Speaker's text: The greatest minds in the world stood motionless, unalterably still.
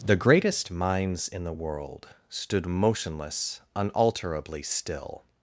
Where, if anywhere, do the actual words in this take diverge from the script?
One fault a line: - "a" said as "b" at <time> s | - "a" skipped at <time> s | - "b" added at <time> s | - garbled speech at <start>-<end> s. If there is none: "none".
none